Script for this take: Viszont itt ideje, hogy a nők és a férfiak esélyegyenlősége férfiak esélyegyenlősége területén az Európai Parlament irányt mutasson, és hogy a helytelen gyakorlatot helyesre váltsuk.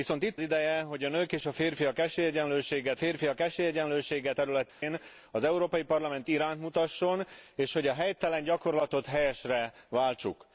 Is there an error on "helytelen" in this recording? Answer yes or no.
no